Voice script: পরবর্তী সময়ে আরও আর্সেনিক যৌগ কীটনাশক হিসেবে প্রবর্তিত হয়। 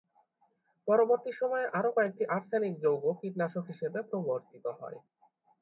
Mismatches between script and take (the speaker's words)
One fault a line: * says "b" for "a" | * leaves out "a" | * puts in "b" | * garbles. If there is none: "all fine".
* puts in "কয়েকটি"